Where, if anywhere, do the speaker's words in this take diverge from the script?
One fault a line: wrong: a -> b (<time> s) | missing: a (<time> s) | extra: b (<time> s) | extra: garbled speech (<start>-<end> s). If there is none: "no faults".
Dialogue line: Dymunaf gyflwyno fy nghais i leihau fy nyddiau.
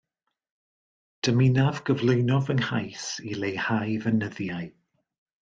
no faults